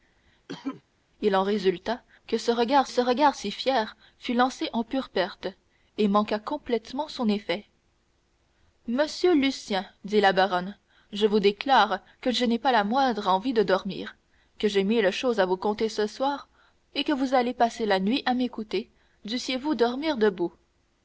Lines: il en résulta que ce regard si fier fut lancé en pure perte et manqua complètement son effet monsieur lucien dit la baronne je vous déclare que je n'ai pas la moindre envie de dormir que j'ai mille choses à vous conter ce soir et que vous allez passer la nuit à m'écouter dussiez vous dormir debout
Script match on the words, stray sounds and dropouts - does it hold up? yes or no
no